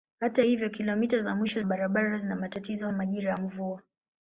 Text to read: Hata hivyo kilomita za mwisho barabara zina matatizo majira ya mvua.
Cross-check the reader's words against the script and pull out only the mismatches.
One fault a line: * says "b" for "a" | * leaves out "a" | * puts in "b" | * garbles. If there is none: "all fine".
all fine